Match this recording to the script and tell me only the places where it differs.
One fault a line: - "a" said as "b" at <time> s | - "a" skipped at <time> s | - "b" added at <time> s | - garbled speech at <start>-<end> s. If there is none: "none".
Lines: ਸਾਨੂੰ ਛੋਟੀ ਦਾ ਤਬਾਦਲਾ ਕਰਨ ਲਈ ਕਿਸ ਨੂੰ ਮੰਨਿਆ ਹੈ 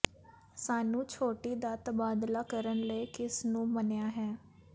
none